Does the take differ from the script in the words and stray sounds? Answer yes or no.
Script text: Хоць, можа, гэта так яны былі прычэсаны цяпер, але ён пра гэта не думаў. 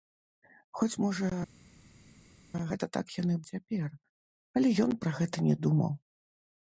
yes